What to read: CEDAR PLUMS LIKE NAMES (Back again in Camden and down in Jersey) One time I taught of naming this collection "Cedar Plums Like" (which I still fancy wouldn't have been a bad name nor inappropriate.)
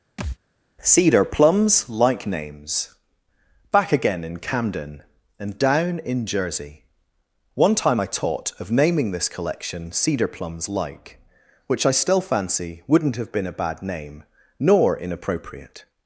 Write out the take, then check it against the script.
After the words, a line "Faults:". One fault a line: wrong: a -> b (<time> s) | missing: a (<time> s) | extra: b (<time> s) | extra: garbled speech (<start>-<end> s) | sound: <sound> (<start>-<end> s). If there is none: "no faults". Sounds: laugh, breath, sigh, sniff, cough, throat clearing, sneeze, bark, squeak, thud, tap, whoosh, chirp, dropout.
CEDAR PLUMS LIKE NAMES (Back again in Camden and down in Jersey) One time I taught of naming this collection "Cedar Plums Like" (which I still fancy wouldn't have been a bad name nor inappropriate.)
Faults:
sound: thud (0.2-0.4 s)